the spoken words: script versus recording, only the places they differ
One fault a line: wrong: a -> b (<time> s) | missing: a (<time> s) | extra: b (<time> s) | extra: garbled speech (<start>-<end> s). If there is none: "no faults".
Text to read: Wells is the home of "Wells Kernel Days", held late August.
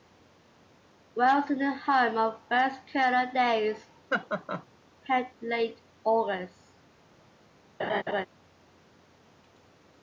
no faults